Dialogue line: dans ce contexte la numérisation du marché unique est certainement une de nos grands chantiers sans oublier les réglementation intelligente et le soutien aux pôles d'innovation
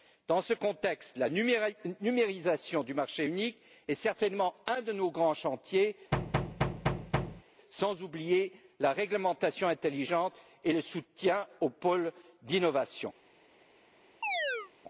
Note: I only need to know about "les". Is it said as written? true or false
false